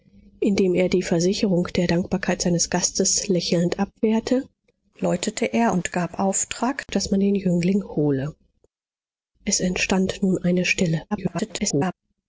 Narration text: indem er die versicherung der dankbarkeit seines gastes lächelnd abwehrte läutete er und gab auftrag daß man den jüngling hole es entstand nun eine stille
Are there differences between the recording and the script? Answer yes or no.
yes